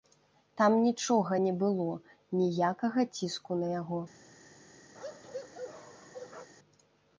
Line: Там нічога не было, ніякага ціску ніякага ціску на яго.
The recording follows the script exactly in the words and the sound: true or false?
false